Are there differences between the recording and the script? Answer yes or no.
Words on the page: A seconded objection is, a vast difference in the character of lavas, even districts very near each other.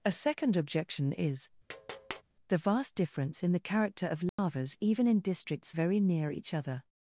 yes